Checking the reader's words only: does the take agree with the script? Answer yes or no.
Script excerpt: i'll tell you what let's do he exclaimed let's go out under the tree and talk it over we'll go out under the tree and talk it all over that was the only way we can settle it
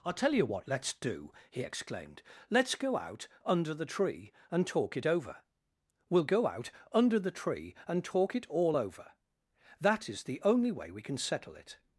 no